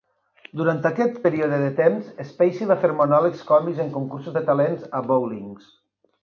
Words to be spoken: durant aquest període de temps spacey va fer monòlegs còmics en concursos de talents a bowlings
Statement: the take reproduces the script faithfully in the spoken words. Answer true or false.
true